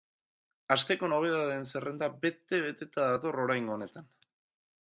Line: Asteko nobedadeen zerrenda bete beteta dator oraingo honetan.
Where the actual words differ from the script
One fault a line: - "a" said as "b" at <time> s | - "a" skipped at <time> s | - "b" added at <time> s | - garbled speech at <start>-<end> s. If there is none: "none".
none